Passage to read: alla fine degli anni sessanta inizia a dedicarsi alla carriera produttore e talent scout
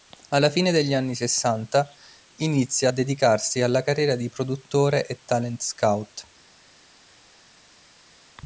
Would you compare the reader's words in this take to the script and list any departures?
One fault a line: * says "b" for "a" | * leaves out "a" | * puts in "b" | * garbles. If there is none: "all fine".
* puts in "di"